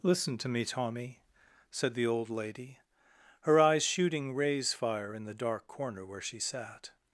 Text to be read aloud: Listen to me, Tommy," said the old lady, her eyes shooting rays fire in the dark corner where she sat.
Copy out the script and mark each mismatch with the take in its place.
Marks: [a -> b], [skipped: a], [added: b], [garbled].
Listen to me, Tommy," said the old lady, her eyes shooting rays fire in the dark corner where she sat.